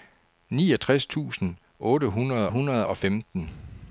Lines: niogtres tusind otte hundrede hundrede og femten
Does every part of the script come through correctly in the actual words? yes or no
yes